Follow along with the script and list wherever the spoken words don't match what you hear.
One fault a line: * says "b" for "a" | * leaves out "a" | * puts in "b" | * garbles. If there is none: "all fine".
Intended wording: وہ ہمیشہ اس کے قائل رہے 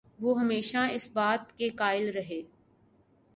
* puts in "بات"